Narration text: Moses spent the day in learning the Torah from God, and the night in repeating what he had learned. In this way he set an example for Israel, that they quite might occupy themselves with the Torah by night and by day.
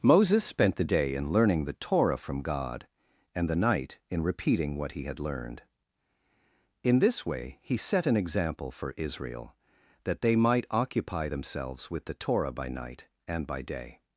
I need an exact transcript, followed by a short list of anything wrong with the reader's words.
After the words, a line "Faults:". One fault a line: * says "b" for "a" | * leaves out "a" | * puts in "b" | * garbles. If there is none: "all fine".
Moses spent the day in learning the Torah from God, and the night in repeating what he had learned. In this way he set an example for Israel, that they might occupy themselves with the Torah by night and by day.
Faults:
* leaves out "quite"